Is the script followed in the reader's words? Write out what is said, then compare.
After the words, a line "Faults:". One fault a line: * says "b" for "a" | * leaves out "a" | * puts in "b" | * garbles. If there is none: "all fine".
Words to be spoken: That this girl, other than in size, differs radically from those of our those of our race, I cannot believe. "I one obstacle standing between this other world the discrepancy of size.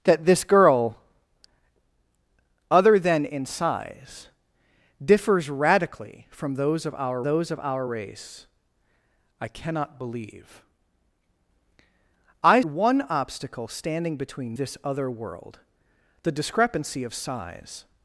That this girl, other than in size, differs radically from those of our those of our race, I cannot believe. "I one obstacle standing between this other world the discrepancy of size.
Faults:
all fine